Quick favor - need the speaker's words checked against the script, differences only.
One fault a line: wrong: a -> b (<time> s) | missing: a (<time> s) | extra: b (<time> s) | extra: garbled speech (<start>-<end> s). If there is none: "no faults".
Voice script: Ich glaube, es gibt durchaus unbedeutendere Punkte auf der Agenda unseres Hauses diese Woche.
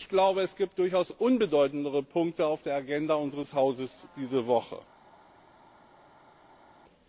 no faults